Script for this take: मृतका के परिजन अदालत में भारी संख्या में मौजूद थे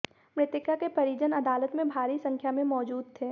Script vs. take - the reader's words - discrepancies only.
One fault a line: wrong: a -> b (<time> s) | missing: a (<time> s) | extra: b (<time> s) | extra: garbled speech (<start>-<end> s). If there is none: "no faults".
no faults